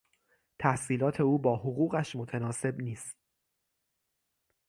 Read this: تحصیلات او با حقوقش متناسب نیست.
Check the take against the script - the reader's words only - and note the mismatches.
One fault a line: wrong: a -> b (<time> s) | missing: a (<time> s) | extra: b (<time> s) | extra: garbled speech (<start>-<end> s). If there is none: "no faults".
no faults